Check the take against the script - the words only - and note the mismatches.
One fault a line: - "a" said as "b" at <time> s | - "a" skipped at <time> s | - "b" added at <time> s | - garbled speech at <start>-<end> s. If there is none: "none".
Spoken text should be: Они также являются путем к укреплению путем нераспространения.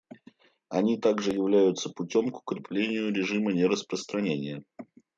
- "путем" said as "режима" at 3.1 s